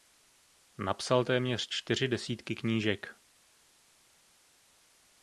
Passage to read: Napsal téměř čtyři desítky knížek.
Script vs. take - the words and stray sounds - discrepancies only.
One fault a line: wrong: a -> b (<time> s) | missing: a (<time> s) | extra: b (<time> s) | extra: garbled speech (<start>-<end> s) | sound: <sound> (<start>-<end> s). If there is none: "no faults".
no faults